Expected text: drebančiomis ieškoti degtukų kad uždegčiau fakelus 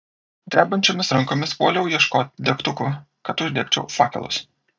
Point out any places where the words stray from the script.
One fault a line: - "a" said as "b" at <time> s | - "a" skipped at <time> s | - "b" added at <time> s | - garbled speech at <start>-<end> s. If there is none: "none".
- "rankomis puoliau" added at 1.2 s